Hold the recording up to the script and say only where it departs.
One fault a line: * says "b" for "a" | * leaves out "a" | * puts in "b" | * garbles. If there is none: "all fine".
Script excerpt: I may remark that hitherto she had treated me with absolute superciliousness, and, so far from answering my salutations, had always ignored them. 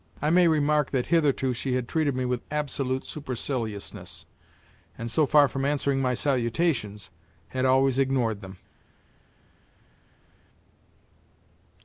all fine